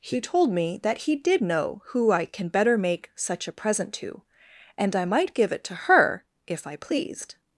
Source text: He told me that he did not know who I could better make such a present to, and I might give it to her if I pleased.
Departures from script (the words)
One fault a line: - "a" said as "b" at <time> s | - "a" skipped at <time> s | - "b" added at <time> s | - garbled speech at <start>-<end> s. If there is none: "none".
- "not" skipped at 1.4 s
- "could" said as "can" at 2.2 s